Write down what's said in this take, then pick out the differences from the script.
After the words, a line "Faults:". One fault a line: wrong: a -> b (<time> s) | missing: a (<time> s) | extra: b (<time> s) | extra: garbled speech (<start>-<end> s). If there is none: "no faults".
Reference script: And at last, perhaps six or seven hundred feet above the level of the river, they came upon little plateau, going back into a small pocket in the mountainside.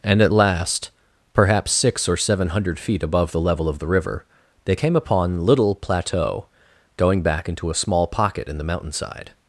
And at last, perhaps six or seven hundred feet above the level of the river, they came upon little plateau, going back into a small pocket in the mountainside.
Faults:
no faults